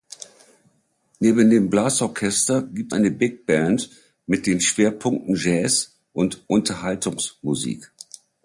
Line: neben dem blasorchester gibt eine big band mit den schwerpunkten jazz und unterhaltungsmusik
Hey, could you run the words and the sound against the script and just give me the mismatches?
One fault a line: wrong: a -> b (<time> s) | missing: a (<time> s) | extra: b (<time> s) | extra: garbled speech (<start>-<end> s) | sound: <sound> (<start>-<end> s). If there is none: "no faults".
no faults